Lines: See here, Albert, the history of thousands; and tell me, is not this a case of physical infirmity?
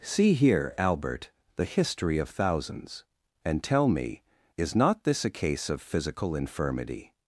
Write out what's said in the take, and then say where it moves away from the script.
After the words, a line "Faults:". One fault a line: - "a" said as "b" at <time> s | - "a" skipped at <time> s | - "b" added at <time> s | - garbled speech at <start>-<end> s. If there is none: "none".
See here, Albert, the history of thousands; and tell me, is not this a case of physical infirmity?
Faults:
none